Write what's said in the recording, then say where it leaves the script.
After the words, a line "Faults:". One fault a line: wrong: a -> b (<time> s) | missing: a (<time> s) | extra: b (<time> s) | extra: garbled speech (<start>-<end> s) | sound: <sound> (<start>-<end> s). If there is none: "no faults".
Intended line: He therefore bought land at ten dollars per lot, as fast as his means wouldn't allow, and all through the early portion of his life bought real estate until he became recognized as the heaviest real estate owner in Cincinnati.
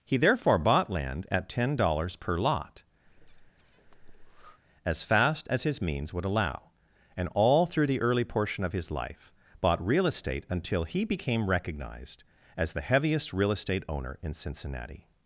He therefore bought land at ten dollars per lot, as fast as his means would allow, and all through the early portion of his life bought real estate until he became recognized as the heaviest real estate owner in Cincinnati.
Faults:
sound: breath (3.0-4.6 s)
wrong: wouldn't -> would (6.1 s)